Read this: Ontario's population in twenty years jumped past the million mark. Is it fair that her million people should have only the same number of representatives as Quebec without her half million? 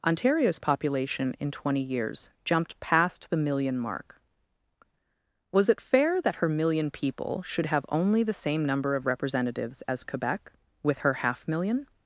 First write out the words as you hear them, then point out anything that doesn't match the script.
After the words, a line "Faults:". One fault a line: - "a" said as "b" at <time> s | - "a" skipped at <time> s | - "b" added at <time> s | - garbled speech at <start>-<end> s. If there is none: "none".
Ontario's population in twenty years jumped past the million mark. Was it fair that her million people should have only the same number of representatives as Quebec with her half million?
Faults:
- "Is" said as "Was" at 5.5 s
- "without" said as "with" at 10.8 s